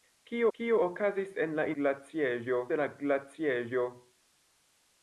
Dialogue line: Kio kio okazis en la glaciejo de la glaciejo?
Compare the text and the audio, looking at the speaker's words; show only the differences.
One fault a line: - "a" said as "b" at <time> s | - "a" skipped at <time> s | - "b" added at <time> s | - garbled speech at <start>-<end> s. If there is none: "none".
none